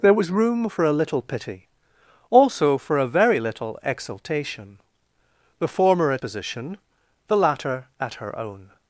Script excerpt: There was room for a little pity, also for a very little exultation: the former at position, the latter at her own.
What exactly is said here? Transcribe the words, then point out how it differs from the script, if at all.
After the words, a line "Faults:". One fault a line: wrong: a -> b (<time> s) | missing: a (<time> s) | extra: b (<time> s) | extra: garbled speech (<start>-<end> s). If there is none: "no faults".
There was room for a little pity, also for a very little exultation: the former at position, the latter at her own.
Faults:
no faults